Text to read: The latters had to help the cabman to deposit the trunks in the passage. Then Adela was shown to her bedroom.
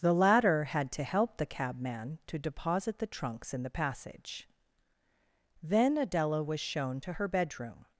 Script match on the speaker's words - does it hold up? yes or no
no